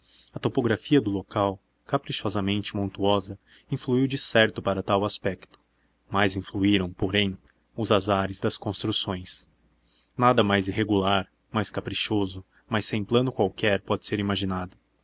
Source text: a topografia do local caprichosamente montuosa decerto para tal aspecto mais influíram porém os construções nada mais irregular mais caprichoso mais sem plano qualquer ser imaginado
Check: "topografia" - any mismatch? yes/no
no